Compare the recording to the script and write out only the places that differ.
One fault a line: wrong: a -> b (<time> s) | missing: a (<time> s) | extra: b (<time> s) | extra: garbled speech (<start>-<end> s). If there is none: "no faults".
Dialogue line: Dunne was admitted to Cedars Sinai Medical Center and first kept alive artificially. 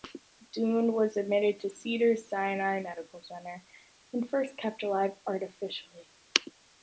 no faults